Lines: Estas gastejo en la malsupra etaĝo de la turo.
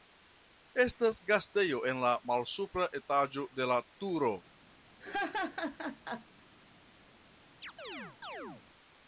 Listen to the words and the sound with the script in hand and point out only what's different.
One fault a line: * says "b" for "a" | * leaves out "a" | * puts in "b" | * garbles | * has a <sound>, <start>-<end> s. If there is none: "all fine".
* has a laugh, 5.0-6.3 s
* has a chirp, 7.6-8.6 s